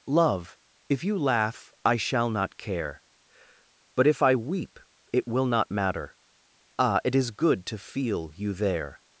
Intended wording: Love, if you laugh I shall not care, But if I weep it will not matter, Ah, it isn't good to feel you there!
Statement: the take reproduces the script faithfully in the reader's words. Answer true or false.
false